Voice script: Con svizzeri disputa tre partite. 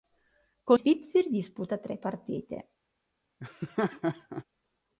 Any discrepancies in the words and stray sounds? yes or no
yes